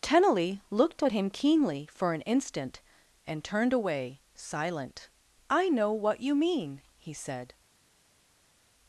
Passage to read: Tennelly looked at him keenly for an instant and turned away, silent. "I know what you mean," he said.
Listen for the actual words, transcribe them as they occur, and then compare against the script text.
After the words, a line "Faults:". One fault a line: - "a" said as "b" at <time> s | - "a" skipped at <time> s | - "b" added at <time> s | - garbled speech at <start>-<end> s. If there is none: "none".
Tennelly looked at him keenly for an instant and turned away, silent. "I know what you mean," he said.
Faults:
none